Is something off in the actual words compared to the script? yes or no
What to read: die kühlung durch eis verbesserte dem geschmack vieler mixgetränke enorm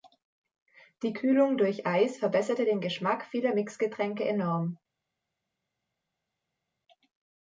yes